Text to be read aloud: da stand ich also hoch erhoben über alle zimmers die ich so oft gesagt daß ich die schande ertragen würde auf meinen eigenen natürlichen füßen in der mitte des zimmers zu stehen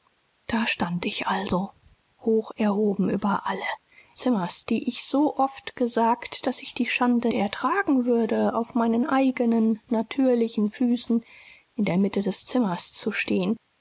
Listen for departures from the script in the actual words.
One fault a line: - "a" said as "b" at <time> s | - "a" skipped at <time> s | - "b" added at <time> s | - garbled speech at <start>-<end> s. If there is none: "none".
none